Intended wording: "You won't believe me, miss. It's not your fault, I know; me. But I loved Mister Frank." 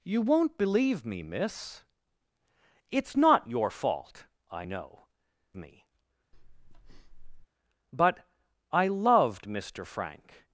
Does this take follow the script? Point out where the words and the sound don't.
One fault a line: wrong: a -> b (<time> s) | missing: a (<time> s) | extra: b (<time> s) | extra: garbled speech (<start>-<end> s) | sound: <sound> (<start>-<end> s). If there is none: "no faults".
sound: breath (6.3-7.5 s)